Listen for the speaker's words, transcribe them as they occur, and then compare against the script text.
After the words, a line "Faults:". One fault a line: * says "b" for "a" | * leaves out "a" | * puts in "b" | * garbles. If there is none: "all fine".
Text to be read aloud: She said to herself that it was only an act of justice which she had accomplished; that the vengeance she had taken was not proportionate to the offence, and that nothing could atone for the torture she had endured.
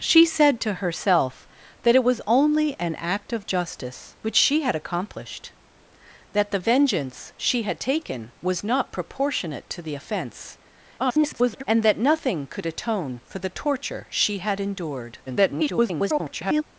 She said to herself that it was only an act of justice which she had accomplished; that the vengeance she had taken was not proportionate to the offence, [garbled] and that nothing could atone for the torture she had endured. [garbled]
Faults:
* garbles
* garbles